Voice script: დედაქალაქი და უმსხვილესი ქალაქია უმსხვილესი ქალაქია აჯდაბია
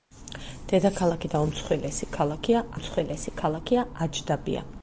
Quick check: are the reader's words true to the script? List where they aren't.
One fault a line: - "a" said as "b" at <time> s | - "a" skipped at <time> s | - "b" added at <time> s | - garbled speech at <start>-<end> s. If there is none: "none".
none